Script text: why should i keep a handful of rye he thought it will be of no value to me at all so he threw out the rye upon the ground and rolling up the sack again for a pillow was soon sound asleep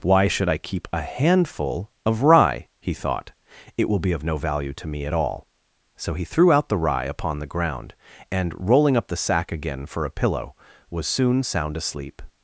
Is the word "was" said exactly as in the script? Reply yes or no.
yes